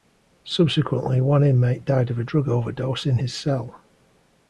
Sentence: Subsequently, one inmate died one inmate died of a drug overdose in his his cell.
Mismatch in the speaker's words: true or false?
true